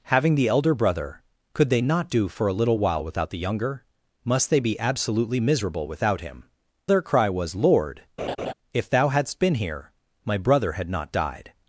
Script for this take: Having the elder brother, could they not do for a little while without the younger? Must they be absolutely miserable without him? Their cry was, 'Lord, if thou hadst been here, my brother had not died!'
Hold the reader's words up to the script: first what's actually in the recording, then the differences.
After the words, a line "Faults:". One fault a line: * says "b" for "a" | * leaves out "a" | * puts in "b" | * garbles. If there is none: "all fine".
Having the elder brother, could they not do for a little while without the younger? Must they be absolutely miserable without him? Their cry was, 'Lord, if thou hadst been here, my brother had not died!'
Faults:
all fine